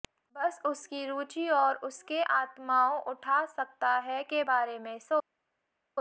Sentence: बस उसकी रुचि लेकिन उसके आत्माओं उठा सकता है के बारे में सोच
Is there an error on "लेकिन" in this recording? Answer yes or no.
yes